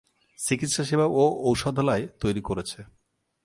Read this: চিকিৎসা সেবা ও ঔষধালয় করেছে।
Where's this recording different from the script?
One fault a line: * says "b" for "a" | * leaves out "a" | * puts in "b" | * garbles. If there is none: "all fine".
* puts in "তৈরি"